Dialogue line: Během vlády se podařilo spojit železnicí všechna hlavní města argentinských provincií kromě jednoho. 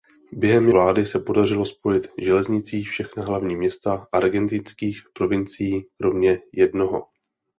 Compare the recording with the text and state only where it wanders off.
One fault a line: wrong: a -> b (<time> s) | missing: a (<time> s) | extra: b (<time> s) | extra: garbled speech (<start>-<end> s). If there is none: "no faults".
no faults